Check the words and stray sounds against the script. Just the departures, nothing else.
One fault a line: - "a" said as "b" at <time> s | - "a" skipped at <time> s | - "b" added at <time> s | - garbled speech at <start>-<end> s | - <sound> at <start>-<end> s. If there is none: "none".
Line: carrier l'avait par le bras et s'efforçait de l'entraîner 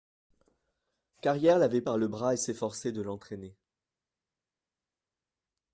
none